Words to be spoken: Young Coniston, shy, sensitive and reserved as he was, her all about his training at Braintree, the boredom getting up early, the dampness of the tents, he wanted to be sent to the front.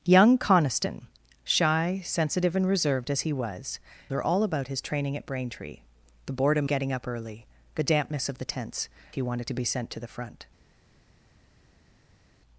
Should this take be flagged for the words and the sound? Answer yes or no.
no